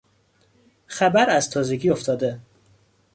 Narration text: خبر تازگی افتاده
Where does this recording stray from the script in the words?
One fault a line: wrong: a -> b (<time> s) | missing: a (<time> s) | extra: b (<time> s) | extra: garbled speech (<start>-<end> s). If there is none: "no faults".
extra: از (1.3 s)